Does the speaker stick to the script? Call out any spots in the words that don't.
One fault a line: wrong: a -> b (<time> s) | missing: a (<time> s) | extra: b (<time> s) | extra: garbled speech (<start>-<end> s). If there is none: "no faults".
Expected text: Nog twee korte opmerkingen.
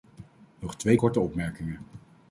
no faults